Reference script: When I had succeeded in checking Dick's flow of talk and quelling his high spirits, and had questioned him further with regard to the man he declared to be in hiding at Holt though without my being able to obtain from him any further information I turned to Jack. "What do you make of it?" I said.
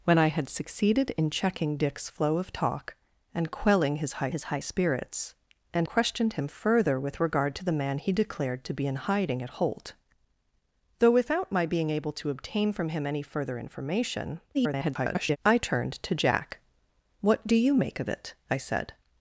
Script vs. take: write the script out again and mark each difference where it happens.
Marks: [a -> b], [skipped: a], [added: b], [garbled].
When I had succeeded in checking Dick's flow of talk and quelling his high [added: his high] spirits, and [skipped: had] questioned him further with regard to the man he declared to be in hiding at Holt though without my being able to obtain from him any further information [garbled] I turned to Jack. "What do you make of it?" I said.